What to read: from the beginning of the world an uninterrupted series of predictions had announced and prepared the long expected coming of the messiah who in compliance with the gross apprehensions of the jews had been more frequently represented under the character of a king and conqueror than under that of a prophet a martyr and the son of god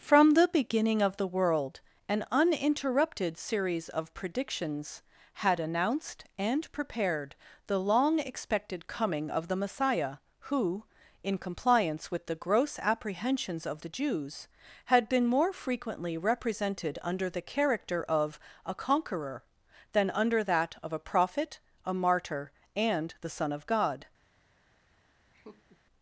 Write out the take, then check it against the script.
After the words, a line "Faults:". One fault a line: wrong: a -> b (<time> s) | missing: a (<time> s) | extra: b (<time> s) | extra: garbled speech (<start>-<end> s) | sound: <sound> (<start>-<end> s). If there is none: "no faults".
from the beginning of the world an uninterrupted series of predictions had announced and prepared the long expected coming of the messiah who in compliance with the gross apprehensions of the jews had been more frequently represented under the character of a conqueror than under that of a prophet a martyr and the son of god
Faults:
missing: king and (18.8 s)
sound: laugh (25.3-25.8 s)